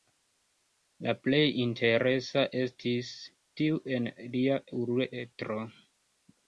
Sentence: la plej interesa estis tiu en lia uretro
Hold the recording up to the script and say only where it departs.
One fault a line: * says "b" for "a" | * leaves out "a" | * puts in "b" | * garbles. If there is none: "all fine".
all fine